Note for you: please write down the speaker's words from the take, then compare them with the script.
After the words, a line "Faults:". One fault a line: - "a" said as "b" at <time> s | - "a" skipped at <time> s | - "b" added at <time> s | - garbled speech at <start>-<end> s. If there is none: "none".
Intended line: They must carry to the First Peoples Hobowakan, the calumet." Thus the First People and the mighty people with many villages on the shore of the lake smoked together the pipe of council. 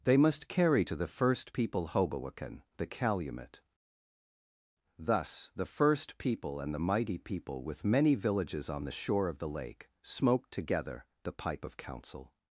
They must carry to the First People Hobowakan, the calumet." Thus the First People and the mighty people with many villages on the shore of the lake smoked together the pipe of council.
Faults:
- "Peoples" said as "People" at 1.5 s